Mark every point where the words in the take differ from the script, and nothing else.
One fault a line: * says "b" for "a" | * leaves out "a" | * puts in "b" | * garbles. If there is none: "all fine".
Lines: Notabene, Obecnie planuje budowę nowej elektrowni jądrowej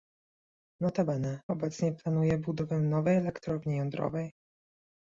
all fine